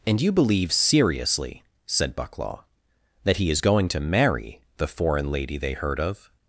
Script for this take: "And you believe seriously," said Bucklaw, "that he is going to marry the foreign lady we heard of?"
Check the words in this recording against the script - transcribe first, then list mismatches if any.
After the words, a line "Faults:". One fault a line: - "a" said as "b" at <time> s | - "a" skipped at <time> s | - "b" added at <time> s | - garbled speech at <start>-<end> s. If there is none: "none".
"And you believe seriously," said Bucklaw, "that he is going to marry the foreign lady they heard of?"
Faults:
- "we" said as "they" at 5.6 s